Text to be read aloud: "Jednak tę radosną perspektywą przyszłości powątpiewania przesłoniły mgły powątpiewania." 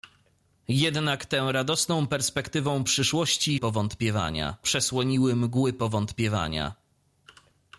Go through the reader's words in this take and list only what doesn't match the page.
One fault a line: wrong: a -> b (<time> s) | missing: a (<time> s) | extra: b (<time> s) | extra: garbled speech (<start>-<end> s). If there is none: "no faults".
no faults